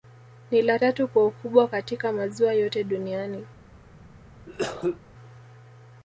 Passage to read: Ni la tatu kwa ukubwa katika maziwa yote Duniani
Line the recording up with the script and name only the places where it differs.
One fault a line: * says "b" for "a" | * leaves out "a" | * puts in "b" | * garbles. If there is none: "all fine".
all fine